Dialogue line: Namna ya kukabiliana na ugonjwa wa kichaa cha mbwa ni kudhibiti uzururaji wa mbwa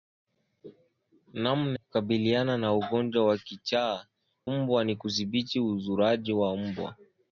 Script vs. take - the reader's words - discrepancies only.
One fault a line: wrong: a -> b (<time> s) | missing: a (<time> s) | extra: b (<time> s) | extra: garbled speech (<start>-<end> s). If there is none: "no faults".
missing: ya (1.8 s)
missing: cha (4.1 s)